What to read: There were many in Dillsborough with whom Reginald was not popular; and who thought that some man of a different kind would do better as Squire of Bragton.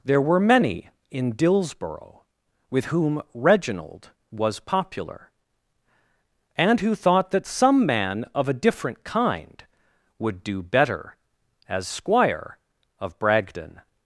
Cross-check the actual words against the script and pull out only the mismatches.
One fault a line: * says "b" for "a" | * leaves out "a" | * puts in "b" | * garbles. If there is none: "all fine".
* leaves out "not"